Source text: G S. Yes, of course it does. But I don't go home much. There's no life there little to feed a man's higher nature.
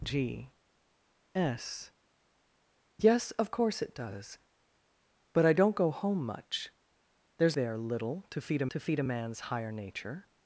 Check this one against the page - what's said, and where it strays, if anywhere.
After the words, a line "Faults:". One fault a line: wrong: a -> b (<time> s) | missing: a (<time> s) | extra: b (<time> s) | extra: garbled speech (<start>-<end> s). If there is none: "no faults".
G S. Yes, of course it does. But I don't go home much. There's there little to feed a to feed a man's higher nature.
Faults:
wrong: no life there little -> there little to feed a (7.5 s)